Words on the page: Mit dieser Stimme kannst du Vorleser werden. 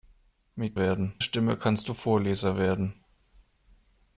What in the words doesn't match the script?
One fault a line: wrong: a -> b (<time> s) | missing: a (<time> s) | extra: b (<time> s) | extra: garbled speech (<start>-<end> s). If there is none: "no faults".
wrong: dieser -> werden (0.8 s)